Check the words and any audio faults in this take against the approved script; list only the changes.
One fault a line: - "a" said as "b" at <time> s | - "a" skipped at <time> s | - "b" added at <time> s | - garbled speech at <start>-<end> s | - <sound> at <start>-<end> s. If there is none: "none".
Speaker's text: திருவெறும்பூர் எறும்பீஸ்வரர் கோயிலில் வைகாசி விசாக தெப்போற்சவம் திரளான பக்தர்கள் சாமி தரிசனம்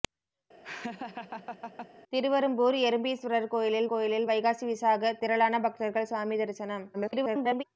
- laugh at 0.6-1.9 s
- "கோயிலில்" added at 3.9 s
- "தெப்போற்சவம்" skipped at 5.1 s
- garbled speech at 6.9-7.6 s